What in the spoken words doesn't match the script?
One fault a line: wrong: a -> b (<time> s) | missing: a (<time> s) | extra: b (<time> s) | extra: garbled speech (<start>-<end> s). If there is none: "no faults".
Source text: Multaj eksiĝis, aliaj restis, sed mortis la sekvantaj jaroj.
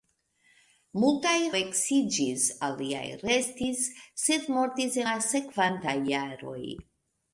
no faults